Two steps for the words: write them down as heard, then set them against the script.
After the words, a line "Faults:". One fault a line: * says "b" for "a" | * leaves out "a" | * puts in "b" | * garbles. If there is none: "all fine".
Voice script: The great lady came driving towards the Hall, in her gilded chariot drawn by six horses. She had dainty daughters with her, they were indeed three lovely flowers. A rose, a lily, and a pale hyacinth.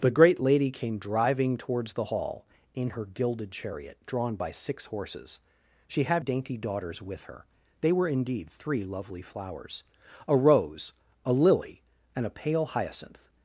The great lady came driving towards the Hall, in her gilded chariot drawn by six horses. She had dainty daughters with her, they were indeed three lovely flowers. A rose, a lily, and a pale hyacinth.
Faults:
all fine